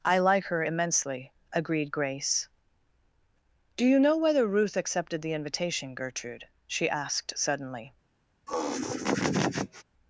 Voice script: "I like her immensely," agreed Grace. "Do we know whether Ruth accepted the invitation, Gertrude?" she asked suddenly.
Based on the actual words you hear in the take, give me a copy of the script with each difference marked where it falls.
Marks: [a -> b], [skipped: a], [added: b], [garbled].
"I like her immensely," agreed Grace. "Do [we -> you] know whether Ruth accepted the invitation, Gertrude?" she asked suddenly.